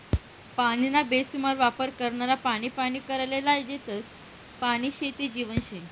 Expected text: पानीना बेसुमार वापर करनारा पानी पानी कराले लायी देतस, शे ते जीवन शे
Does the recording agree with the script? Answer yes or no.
no